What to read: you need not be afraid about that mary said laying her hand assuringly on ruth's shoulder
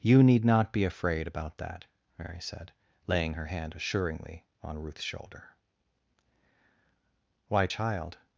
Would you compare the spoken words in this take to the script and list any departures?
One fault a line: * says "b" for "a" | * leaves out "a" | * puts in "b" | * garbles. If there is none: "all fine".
* puts in "why child"